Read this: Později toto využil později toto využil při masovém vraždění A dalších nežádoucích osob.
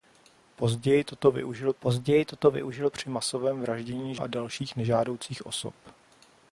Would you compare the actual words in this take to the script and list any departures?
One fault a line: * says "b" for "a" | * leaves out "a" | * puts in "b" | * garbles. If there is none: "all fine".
all fine